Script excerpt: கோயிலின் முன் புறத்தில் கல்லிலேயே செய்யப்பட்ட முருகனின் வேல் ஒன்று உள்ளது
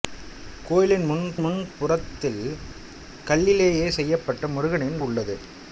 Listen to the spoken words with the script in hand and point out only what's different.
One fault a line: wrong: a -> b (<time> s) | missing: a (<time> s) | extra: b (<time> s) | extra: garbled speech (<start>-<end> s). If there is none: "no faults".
extra: முன் (1.4 s)
missing: வேல் ஒன்று (5.0 s)